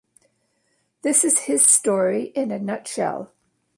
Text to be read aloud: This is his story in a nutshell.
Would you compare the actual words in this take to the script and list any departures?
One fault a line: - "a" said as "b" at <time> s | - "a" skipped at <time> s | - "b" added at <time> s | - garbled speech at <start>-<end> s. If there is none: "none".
none